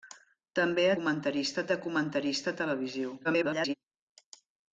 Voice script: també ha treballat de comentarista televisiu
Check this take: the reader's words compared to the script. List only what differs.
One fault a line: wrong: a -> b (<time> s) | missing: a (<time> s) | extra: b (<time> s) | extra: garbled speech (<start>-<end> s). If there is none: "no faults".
wrong: treballat -> comentarista (1.0 s)
extra: garbled speech (3.2-3.7 s)